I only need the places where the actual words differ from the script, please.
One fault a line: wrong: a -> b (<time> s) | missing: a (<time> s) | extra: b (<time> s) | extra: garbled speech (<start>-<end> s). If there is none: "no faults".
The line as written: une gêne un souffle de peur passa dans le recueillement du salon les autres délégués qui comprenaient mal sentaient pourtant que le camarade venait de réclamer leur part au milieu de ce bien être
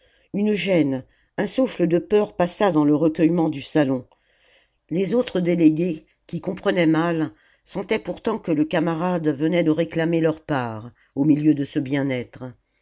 no faults